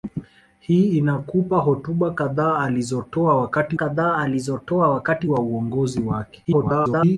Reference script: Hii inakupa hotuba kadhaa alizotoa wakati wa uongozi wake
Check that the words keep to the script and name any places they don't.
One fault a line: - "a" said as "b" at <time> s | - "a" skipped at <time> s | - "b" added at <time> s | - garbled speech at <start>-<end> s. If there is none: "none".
- "kadhaa alizotoa wakati" added at 3.7 s
- garbled speech at 6.4-7.2 s